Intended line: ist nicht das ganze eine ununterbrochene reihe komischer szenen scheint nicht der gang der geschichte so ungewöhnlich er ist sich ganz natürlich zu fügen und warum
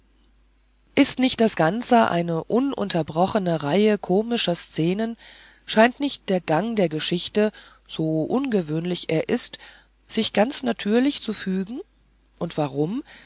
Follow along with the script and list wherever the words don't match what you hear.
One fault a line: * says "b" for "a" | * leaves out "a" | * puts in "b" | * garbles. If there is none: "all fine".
all fine